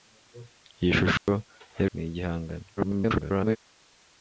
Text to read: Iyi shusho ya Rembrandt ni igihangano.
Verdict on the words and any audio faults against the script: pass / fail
fail